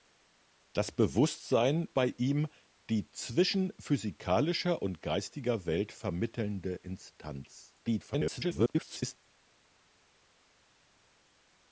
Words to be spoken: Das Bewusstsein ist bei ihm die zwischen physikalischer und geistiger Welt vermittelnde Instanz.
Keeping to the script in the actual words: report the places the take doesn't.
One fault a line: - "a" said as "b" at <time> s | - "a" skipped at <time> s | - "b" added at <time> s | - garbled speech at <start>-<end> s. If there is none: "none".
- "ist" skipped at 1.9 s
- garbled speech at 7.8-9.2 s